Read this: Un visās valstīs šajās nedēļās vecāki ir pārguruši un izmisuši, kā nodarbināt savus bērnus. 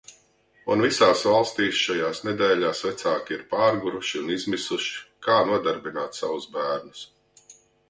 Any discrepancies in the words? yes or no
no